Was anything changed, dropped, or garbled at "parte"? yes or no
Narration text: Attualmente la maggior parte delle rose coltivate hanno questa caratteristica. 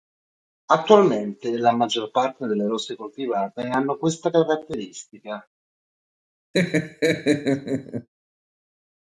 no